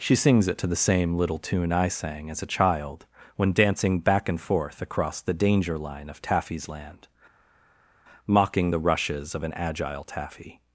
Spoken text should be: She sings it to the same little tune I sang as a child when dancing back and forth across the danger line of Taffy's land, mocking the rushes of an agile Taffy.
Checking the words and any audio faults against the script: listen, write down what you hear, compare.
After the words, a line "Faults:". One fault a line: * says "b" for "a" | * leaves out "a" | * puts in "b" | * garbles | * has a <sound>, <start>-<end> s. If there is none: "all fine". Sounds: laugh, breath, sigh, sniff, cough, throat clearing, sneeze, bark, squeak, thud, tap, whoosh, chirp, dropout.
She sings it to the same little tune I sang as a child when dancing back and forth across the danger line of Taffy's land, mocking the rushes of an agile Taffy.
Faults:
all fine